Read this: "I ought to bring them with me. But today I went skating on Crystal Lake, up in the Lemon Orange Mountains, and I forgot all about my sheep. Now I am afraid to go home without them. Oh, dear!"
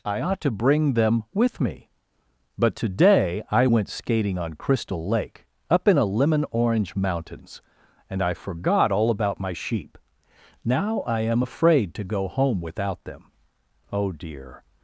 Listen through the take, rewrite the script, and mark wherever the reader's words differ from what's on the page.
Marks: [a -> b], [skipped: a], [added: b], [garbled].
"I ought to bring them with me. But today I went skating on Crystal Lake, up in [the -> a] Lemon Orange Mountains, and I forgot all about my sheep. Now I am afraid to go home without them. Oh, dear!"